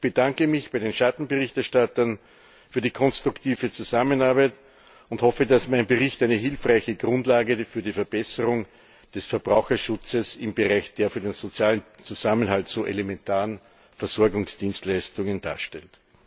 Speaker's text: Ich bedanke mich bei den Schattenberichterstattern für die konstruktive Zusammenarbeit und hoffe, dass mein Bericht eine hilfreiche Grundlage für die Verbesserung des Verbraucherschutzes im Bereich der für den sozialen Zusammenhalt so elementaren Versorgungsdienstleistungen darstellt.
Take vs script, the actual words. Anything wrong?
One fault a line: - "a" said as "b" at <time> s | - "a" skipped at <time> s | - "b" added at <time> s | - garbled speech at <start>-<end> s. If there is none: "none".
none